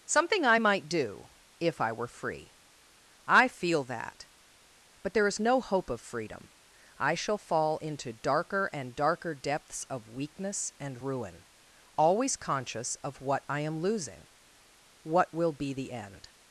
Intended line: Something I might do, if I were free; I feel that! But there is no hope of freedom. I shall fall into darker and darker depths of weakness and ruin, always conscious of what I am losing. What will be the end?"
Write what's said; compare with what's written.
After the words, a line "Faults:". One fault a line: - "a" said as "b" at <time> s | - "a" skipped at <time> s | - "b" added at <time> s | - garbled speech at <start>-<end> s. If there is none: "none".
Something I might do, if I were free; I feel that! But there is no hope of freedom. I shall fall into darker and darker depths of weakness and ruin, always conscious of what I am losing. What will be the end?"
Faults:
none